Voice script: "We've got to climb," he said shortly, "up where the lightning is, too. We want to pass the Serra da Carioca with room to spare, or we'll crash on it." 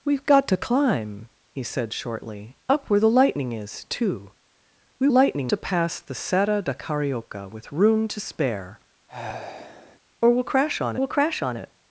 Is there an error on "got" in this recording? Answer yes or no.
no